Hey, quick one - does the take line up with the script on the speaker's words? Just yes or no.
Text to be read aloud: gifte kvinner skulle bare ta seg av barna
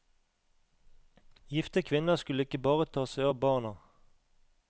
no